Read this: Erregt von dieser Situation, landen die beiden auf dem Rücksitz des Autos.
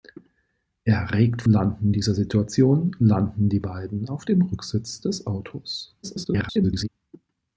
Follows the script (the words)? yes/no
no